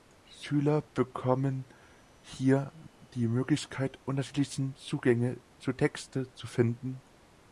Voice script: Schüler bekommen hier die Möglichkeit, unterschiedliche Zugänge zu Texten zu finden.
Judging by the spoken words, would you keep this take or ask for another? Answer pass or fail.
pass